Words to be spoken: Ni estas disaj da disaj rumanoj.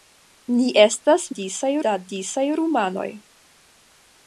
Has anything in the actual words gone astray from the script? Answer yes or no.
no